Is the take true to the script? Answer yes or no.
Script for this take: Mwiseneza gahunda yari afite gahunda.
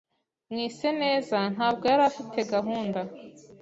no